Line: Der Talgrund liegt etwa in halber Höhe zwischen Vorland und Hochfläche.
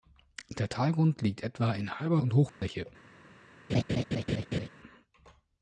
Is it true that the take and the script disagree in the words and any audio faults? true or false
true